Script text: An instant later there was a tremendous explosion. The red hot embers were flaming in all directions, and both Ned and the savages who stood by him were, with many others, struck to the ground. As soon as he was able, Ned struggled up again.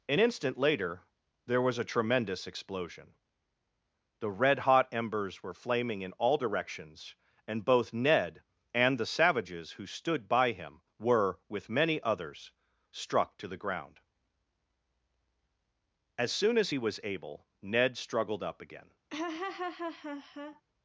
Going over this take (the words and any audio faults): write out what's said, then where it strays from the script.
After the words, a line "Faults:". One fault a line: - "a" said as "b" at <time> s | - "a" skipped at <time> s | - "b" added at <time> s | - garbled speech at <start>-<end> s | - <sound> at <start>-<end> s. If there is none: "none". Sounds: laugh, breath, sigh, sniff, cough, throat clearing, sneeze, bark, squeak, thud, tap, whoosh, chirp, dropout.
An instant later there was a tremendous explosion. The red hot embers were flaming in all directions, and both Ned and the savages who stood by him were, with many others, struck to the ground. As soon as he was able, Ned struggled up again.
Faults:
- laugh at 19.1-20.6 s